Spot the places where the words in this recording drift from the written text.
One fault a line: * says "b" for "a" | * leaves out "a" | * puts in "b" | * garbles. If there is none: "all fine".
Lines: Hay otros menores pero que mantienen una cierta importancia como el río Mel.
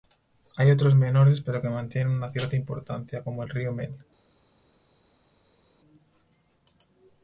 all fine